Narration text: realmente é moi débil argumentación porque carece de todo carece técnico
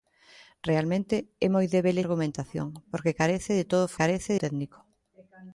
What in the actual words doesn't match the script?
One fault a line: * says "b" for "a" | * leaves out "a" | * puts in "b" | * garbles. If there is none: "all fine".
all fine